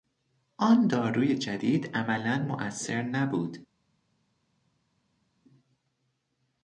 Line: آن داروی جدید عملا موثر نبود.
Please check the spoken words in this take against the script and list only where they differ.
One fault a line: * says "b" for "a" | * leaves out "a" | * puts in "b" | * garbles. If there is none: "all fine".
all fine